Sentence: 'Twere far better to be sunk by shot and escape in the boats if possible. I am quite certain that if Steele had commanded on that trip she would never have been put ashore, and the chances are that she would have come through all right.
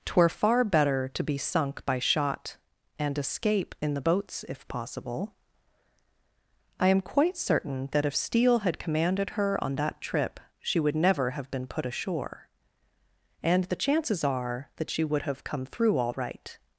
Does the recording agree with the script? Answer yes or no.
no